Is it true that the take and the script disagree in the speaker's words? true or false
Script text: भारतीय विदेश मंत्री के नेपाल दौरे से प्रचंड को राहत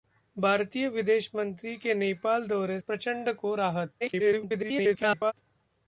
true